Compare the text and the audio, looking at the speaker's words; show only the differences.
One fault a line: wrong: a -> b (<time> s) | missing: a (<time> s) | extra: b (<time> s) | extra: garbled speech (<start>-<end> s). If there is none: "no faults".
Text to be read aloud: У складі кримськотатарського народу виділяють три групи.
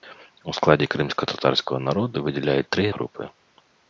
no faults